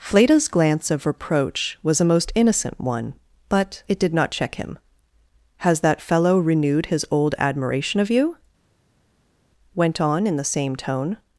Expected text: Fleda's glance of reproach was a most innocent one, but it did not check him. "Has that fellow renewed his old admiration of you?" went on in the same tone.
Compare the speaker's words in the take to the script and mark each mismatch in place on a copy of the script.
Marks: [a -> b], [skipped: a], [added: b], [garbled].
Fleda's glance of reproach was a most innocent one, but it did not check him. "Has that fellow renewed his old admiration of you?" went on in the same tone.